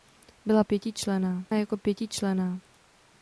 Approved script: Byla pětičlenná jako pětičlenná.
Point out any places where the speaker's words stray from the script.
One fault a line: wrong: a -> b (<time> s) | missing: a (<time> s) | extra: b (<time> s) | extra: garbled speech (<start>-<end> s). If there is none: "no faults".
no faults